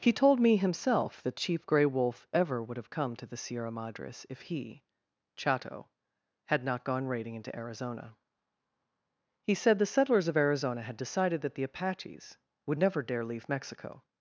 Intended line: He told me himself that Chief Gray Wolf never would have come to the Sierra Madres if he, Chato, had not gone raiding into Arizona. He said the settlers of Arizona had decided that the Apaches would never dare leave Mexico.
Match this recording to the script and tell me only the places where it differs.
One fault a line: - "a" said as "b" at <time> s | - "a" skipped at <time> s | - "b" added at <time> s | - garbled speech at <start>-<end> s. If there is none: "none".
- "never" said as "ever" at 2.3 s